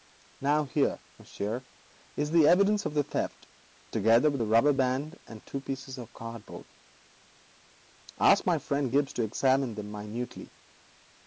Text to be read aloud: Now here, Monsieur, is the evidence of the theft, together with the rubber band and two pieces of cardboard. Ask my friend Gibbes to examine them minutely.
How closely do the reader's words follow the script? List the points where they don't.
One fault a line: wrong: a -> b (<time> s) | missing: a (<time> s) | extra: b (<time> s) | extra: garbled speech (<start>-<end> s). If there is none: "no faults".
no faults